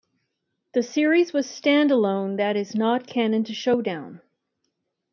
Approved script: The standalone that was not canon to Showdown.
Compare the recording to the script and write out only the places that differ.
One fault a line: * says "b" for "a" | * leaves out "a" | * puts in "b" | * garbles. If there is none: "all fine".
* puts in "series was"
* says "is" for "was"